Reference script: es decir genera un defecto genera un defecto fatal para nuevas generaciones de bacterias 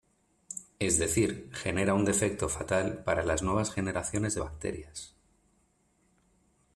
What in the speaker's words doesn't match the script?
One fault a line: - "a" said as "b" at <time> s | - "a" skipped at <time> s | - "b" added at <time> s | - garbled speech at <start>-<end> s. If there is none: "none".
- "genera un defecto" skipped at 2.5 s
- "las" added at 3.2 s